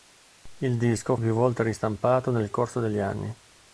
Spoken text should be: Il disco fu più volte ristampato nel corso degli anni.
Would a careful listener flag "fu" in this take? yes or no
yes